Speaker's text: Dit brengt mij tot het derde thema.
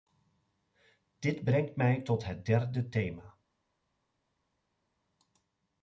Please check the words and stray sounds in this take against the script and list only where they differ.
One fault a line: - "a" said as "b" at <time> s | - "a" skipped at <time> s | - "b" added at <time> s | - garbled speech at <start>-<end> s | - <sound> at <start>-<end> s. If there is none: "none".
none